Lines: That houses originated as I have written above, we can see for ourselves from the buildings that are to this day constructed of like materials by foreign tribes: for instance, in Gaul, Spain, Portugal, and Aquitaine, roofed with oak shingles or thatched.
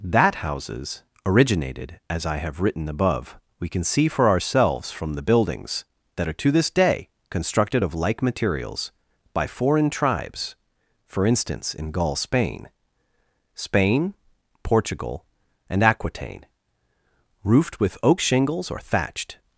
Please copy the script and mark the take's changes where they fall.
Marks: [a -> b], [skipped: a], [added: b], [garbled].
That houses originated as I have written above, we can see for ourselves from the buildings that are to this day constructed of like materials by foreign tribes: for instance, in Gaul, Spain, [added: Spain] Portugal, and Aquitaine, roofed with oak shingles or thatched.